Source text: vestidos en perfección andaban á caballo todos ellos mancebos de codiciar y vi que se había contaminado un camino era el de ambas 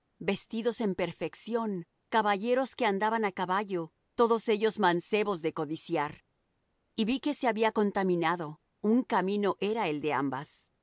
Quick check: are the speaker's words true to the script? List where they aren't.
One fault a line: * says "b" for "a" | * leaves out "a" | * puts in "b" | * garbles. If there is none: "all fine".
* puts in "caballeros que"